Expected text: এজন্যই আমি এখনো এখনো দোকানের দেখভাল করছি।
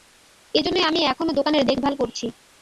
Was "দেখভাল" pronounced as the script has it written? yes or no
yes